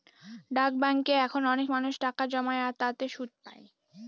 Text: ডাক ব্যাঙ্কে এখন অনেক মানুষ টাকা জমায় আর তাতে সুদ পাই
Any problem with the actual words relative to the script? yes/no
no